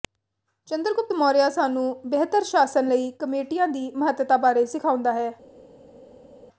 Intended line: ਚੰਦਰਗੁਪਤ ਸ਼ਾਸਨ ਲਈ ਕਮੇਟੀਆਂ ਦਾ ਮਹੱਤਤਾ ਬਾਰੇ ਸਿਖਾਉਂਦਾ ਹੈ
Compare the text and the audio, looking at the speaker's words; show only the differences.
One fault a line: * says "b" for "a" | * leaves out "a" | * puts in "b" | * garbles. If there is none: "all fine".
* puts in "ਮੌਰਿਆ ਸਾਨੂੰ ਬਿਹਤਰ"
* says "ਦੀ" for "ਦਾ"